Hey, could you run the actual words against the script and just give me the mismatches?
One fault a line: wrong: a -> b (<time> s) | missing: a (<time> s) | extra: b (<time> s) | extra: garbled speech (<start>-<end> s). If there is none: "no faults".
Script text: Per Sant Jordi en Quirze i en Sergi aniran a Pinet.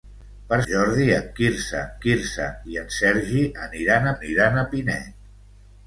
missing: Sant (0.6 s)
extra: Quirze (2.1 s)
extra: aniran (4.2 s)